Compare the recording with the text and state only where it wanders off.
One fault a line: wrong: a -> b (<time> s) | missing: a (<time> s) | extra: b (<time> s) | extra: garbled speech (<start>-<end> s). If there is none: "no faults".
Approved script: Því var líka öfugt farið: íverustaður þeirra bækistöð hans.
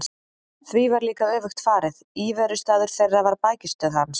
extra: var (3.3 s)